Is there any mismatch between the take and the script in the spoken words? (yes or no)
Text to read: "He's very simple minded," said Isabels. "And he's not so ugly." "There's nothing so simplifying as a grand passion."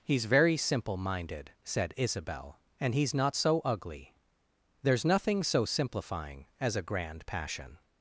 yes